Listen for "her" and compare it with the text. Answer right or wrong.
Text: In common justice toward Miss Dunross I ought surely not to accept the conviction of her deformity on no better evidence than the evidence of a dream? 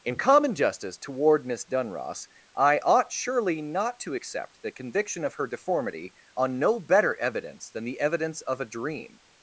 right